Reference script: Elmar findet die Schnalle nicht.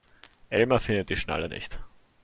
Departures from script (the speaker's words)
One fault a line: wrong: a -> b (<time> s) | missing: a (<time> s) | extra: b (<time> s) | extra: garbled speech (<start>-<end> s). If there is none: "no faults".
no faults